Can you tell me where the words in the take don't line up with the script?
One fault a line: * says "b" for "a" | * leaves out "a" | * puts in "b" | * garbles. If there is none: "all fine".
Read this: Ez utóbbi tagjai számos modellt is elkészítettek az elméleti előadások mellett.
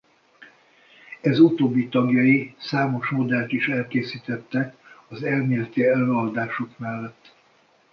all fine